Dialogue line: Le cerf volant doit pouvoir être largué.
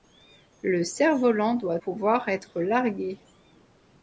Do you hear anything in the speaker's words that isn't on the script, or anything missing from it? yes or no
no